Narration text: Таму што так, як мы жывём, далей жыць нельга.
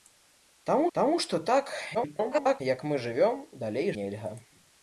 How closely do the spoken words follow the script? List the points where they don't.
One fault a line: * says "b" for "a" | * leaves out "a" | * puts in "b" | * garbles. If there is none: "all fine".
* puts in "таму"
* garbles
* leaves out "жыць"